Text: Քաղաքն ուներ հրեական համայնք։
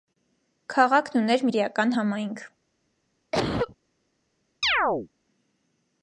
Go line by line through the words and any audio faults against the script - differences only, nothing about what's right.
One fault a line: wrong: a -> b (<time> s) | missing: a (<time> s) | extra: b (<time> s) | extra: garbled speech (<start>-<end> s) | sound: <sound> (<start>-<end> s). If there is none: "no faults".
sound: cough (3.3-3.8 s)
sound: chirp (4.6-5.1 s)